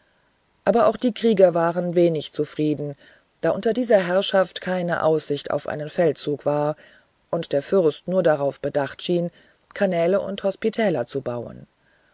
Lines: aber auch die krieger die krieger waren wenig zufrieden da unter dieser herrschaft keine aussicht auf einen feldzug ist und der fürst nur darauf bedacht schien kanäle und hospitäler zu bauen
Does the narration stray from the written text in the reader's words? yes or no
yes